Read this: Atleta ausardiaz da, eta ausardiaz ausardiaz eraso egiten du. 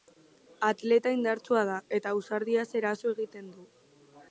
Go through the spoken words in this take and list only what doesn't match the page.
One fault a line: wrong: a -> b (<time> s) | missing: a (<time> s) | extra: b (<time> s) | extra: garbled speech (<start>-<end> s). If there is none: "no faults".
wrong: ausardiaz -> indartsua (1.2 s)
missing: ausardiaz (2.7 s)